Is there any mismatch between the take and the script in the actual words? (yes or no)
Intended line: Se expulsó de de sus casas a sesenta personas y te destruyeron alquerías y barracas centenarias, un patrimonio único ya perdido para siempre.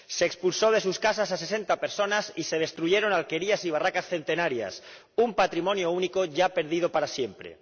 yes